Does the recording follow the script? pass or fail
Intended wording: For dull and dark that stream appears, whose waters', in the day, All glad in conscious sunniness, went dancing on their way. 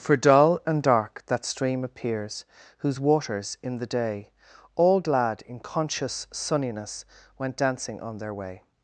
pass